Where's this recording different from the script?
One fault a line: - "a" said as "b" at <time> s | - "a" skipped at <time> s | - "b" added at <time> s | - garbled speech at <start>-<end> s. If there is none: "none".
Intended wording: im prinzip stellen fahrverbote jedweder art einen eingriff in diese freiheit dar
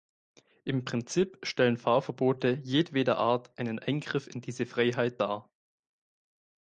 none